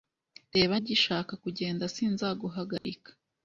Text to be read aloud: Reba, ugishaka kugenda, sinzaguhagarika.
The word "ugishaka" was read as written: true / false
true